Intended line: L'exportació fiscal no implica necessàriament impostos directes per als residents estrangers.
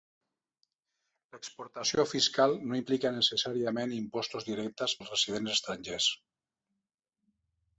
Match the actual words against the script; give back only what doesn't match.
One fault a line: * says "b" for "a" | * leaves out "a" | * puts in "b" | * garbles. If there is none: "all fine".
* leaves out "per"